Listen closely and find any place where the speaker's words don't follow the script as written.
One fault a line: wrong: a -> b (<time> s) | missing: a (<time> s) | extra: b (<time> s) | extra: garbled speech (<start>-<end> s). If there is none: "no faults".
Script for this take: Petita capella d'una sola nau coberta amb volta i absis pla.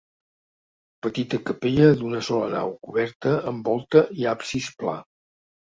no faults